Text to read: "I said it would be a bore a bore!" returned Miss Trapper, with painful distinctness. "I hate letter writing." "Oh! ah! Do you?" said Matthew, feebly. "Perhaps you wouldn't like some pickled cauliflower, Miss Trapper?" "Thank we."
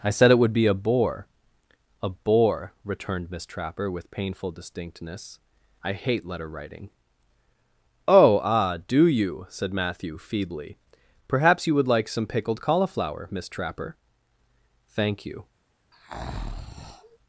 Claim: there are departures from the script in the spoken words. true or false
true